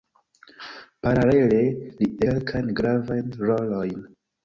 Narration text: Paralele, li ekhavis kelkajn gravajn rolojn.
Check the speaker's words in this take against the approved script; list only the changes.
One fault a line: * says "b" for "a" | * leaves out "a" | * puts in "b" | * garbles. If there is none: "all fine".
* leaves out "ekhavis"